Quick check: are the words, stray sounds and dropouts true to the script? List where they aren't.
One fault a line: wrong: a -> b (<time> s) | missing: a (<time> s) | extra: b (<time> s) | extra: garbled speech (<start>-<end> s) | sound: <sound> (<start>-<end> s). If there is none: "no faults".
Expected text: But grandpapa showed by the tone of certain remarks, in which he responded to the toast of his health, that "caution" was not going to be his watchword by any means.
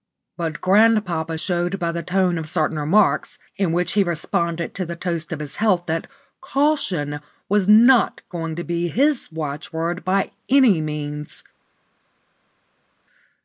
no faults